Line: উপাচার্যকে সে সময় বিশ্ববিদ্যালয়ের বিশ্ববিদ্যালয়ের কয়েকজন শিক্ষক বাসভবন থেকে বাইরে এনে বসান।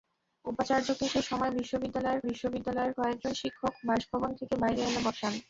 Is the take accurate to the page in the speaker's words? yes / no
yes